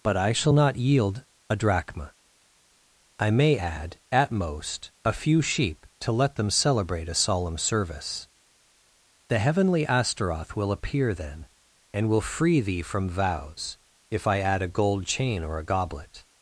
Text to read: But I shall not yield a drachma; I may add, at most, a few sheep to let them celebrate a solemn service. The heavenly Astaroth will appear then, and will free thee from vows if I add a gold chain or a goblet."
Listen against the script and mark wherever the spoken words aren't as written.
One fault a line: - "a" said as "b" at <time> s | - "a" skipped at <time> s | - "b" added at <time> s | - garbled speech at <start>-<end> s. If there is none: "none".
none